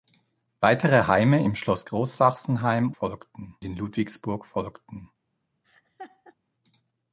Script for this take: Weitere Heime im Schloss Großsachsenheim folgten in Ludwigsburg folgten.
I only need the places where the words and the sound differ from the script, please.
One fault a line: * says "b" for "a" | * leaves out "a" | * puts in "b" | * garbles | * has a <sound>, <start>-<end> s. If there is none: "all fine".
* has a laugh, 5.6-6.4 s